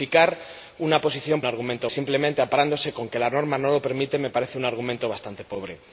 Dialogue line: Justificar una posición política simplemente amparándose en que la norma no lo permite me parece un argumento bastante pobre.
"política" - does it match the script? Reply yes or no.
no